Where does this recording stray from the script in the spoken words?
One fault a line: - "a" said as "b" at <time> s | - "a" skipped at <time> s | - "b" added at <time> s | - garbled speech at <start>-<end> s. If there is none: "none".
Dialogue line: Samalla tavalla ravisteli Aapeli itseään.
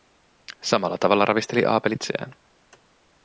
none